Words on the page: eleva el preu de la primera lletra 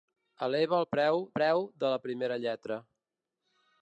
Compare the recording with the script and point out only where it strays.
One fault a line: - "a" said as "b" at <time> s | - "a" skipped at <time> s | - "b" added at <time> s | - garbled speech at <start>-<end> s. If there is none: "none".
- "preu" added at 1.4 s